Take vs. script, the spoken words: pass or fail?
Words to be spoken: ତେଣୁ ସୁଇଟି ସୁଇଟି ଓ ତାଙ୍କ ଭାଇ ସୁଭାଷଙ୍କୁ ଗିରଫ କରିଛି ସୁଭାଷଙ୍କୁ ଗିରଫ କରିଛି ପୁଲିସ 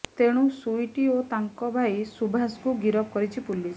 fail